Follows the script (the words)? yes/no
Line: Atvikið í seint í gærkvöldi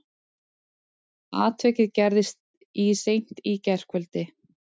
no